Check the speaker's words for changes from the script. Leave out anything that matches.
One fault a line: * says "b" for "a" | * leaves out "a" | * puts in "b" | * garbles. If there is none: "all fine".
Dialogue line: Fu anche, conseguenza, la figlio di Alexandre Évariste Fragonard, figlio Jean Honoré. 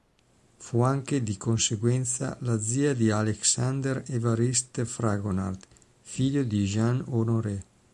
* puts in "di"
* says "zia" for "figlio"
* puts in "di"